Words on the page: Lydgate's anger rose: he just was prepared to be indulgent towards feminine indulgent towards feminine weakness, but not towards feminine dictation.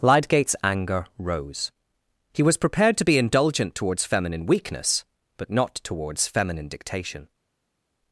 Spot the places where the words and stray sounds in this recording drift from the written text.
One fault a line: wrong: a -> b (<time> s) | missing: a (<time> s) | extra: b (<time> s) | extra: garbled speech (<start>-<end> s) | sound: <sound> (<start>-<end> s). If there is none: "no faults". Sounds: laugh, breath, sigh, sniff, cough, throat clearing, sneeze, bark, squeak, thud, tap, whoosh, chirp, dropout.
missing: just (2.4 s)
missing: indulgent towards feminine (4.5 s)